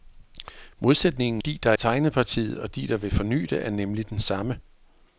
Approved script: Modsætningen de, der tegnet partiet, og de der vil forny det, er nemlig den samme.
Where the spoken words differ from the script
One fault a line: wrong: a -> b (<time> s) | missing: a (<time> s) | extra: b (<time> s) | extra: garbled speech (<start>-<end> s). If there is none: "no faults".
no faults